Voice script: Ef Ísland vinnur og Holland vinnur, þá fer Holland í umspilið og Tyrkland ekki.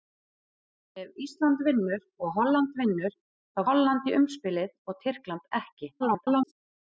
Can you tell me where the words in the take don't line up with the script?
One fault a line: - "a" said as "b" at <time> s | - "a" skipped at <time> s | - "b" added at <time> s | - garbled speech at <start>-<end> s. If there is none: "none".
- "fer" skipped at 3.6 s
- garbled speech at 6.0-6.5 s